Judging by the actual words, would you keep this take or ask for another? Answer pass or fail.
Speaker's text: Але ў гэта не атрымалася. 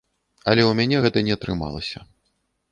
fail